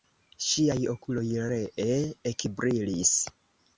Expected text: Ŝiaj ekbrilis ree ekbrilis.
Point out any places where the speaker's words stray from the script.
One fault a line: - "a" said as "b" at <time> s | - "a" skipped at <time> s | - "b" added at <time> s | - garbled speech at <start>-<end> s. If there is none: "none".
- "ekbrilis" said as "okuloj" at 0.9 s